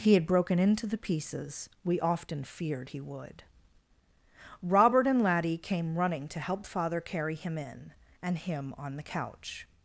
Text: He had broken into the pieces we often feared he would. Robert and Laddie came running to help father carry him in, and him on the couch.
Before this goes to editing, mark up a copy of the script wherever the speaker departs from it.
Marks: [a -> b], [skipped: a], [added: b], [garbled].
He had broken into the pieces we often feared he would. Robert and Laddie came running to help father carry him in, and him on the couch.